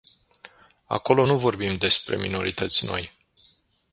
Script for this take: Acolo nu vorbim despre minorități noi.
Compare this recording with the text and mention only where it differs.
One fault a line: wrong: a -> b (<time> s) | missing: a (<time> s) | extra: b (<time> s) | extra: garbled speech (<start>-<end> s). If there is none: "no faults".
no faults